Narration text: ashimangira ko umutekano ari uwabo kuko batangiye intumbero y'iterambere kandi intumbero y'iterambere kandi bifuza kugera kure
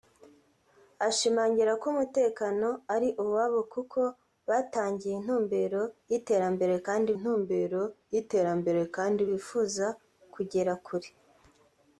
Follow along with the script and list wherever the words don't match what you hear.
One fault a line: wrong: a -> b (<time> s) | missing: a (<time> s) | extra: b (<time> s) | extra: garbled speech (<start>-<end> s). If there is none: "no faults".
no faults